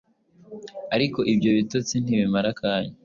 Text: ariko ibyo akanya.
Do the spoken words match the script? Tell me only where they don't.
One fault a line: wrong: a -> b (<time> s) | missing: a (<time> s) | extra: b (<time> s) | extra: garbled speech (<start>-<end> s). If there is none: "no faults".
extra: bitotsi ntibimara (1.6 s)